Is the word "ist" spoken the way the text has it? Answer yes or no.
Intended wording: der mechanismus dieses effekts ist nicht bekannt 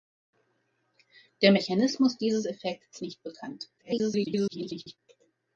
no